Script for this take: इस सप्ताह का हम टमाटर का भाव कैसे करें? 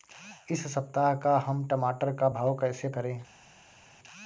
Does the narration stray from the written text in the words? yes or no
no